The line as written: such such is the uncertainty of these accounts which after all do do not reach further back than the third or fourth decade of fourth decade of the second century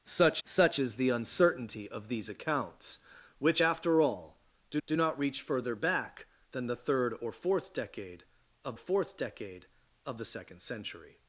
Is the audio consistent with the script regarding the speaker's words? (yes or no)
yes